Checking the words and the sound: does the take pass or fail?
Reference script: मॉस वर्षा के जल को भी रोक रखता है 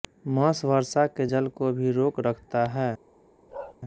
fail